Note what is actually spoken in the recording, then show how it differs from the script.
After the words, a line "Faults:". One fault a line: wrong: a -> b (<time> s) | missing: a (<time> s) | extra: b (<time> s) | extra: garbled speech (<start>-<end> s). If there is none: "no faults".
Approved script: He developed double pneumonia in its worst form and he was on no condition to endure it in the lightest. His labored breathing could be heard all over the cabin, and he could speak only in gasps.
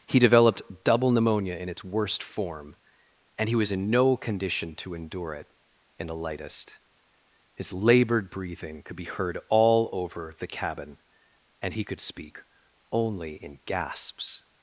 He developed double pneumonia in its worst form and he was in no condition to endure it in the lightest. His labored breathing could be heard all over the cabin, and he could speak only in gasps.
Faults:
wrong: on -> in (3.7 s)